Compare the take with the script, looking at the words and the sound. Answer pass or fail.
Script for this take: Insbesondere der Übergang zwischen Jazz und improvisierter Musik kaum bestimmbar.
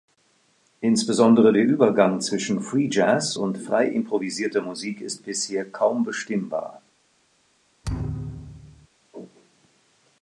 fail